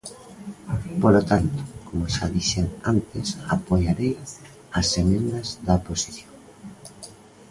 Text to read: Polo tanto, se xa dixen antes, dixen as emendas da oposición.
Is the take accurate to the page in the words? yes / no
no